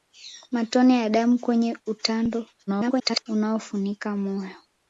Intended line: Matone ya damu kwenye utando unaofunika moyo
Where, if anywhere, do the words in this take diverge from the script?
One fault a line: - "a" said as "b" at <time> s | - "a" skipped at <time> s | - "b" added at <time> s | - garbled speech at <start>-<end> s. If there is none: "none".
- garbled speech at 2.7-3.2 s